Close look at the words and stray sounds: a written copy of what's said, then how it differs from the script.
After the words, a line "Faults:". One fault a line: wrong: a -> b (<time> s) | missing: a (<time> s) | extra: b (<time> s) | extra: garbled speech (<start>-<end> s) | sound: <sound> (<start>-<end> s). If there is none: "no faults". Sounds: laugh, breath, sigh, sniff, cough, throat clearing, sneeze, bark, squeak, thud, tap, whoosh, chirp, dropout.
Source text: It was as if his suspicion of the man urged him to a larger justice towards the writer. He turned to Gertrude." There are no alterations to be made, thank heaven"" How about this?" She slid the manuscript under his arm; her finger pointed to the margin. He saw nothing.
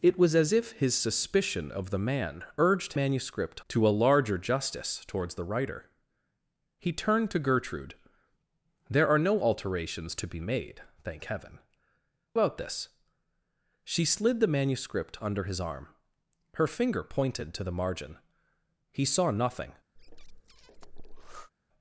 It was as if his suspicion of the man urged manuscript to a larger justice towards the writer. He turned to Gertrude." There are no alterations to be made, thank heaven"" About this?" She slid the manuscript under his arm; her finger pointed to the margin. He saw nothing.
Faults:
wrong: him -> manuscript (3.0 s)
missing: How (11.6 s)
sound: breath (20.0-21.5 s)